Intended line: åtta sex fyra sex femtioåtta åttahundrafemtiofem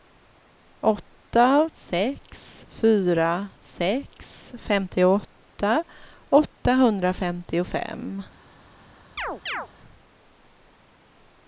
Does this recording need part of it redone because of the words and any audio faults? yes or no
yes